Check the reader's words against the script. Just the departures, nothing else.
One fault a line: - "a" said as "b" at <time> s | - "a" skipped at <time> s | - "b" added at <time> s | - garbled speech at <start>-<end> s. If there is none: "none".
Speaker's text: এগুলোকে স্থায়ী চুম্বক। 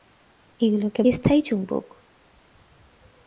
none